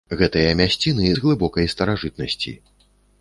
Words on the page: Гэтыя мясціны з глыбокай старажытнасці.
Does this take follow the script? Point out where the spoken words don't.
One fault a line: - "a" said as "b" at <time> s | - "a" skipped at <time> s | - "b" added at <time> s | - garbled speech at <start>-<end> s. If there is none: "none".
none